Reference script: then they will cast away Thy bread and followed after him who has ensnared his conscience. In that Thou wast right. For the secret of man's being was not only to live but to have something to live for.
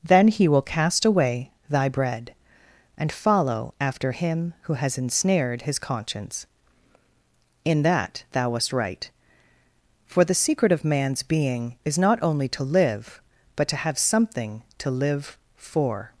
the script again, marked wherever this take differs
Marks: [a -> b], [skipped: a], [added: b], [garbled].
then [they -> he] will cast away Thy bread and [followed -> follow] after him who has ensnared his conscience. In that Thou wast right. For the secret of man's being [was -> is] not only to live but to have something to live for.